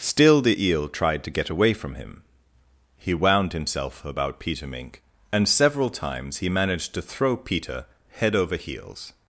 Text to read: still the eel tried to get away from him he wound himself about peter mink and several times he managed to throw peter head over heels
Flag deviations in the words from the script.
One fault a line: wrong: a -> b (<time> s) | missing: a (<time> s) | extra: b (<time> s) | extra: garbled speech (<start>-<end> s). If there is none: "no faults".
no faults